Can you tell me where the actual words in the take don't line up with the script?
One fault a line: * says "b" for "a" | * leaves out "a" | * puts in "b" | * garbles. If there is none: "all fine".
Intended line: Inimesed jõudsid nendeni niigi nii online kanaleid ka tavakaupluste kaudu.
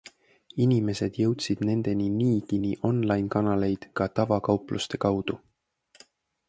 all fine